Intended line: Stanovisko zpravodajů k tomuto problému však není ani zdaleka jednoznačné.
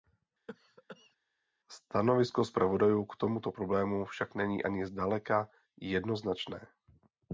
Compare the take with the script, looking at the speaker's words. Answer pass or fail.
pass